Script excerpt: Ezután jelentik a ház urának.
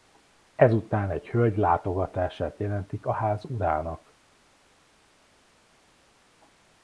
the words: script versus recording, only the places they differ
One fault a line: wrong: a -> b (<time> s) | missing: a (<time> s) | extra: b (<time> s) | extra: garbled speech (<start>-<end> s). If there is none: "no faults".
extra: egy hölgy látogatását (1.1 s)